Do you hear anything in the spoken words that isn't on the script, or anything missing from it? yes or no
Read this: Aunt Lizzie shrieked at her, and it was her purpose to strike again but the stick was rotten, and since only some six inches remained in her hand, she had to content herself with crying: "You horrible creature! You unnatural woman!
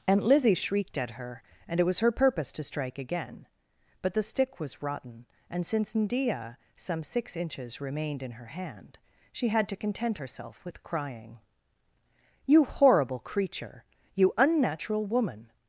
yes